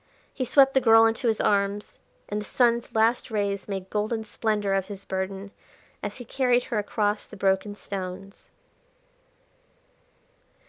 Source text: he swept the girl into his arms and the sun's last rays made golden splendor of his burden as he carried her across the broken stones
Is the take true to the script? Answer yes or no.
yes